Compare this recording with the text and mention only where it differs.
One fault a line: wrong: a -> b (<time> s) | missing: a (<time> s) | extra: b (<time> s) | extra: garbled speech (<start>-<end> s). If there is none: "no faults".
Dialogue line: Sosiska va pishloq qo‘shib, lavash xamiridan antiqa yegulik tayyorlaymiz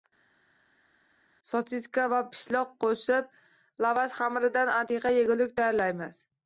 no faults